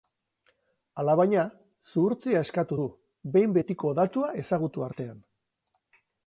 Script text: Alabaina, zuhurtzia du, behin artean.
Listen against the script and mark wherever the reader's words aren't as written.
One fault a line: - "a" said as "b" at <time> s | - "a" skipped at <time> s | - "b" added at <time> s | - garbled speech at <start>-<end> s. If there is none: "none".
- "eskatu" added at 2.5 s
- "betiko datua ezagutu" added at 3.6 s